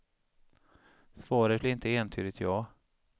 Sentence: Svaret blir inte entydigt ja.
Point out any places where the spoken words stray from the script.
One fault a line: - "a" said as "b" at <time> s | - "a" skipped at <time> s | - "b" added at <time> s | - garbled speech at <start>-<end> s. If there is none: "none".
none